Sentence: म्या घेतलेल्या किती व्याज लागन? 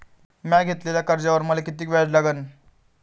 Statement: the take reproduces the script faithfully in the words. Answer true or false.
false